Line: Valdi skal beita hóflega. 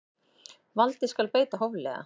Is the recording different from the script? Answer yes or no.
no